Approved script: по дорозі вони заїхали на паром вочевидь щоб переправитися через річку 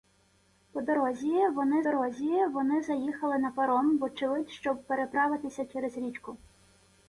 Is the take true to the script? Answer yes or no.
no